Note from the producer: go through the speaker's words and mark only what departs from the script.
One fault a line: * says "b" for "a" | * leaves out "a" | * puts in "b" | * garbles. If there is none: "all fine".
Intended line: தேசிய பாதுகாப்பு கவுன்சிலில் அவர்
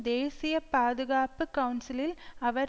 all fine